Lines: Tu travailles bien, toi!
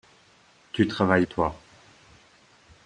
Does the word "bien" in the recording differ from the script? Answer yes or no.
yes